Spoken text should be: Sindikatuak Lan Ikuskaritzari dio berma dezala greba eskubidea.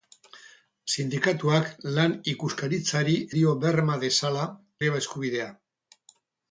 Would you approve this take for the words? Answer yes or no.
yes